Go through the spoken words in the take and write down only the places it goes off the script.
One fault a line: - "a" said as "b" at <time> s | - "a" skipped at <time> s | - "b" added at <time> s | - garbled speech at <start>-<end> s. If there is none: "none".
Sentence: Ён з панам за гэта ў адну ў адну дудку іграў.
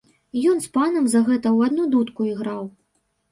- "ў адну" skipped at 1.9 s